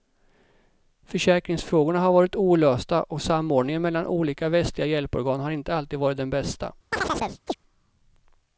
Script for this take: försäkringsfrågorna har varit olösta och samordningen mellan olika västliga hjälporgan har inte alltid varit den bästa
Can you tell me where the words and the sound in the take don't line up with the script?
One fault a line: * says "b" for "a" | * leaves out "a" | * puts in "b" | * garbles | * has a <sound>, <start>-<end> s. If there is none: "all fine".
* has a chirp, 6.9-7.5 s